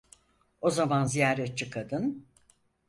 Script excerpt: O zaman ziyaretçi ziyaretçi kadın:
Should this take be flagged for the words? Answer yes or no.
yes